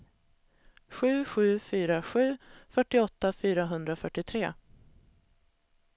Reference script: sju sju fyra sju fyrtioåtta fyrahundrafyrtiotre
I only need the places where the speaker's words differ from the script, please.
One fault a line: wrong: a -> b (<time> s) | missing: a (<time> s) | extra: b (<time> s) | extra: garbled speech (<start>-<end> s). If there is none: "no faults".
no faults